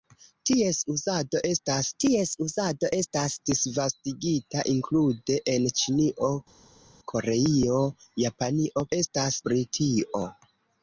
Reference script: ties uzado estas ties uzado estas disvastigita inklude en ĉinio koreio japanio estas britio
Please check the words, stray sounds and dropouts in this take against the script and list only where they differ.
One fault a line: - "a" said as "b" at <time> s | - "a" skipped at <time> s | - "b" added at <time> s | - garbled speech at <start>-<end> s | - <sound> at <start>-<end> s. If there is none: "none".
none